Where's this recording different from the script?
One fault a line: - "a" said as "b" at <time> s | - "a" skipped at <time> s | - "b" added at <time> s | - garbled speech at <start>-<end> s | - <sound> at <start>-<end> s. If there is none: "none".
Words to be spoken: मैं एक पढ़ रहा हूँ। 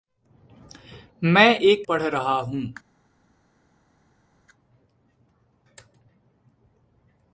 none